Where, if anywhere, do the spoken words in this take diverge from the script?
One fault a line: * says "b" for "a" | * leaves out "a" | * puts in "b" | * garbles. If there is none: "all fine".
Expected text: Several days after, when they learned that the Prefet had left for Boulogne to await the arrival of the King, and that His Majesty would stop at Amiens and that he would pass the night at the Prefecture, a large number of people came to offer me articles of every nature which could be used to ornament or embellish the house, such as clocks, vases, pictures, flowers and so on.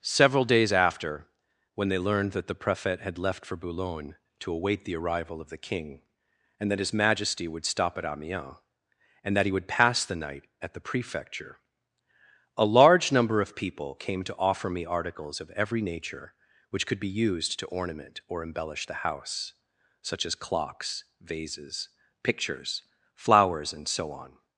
all fine